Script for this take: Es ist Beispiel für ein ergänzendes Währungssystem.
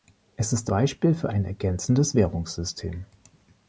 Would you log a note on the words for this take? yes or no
no